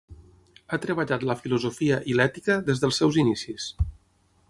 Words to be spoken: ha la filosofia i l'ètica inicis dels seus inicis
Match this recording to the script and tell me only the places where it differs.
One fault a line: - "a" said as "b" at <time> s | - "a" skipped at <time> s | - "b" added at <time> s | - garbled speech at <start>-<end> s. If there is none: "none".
- "treballat" added at 0.8 s
- "inicis" said as "des" at 2.7 s